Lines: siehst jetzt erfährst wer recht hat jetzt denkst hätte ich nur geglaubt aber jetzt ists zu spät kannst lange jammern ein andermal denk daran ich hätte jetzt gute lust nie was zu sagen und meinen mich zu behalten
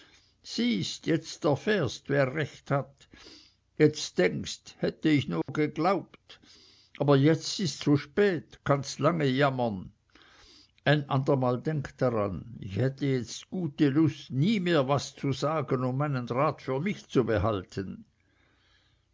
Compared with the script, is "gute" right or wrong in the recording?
right